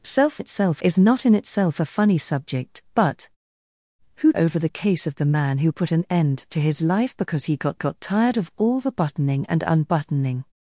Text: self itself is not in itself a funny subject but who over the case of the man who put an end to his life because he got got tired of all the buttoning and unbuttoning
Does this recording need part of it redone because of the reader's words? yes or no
no